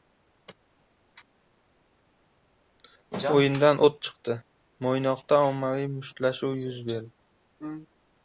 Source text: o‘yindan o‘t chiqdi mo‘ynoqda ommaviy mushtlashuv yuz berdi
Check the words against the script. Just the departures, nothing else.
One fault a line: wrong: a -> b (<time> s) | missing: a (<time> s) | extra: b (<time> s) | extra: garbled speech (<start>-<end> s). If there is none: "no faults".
no faults